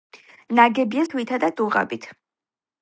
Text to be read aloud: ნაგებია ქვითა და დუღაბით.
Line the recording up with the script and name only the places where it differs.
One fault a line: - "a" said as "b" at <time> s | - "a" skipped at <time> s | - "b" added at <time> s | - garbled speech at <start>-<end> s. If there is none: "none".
none